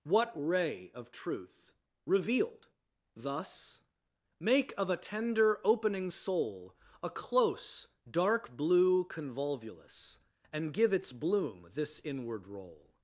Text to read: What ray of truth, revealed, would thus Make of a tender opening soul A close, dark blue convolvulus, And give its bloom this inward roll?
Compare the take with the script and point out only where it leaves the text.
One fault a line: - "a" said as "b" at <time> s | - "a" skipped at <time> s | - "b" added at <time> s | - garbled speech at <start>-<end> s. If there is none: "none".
- "would" skipped at 2.7 s